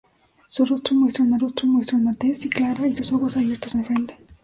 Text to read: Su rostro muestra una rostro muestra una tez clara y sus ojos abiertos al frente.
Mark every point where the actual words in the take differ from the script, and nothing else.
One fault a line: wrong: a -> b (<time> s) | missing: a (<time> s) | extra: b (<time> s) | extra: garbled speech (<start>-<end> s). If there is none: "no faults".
no faults